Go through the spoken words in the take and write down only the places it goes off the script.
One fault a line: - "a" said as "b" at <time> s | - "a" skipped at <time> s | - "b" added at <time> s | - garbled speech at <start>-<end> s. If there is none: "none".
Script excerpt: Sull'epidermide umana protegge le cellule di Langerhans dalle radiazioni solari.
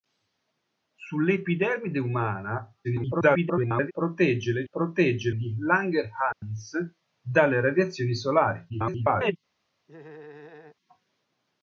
- garbled speech at 2.8-3.9 s
- "cellule" said as "protegge" at 4.7 s
- garbled speech at 8.7-9.4 s